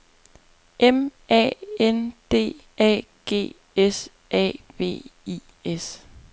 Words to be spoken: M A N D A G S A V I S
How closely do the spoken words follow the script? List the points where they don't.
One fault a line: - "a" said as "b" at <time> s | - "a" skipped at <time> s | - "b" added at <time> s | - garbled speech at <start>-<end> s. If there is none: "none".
none